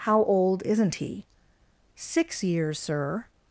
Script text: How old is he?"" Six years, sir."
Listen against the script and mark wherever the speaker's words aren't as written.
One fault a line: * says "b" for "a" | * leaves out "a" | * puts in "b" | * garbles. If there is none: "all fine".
* says "isn't" for "is"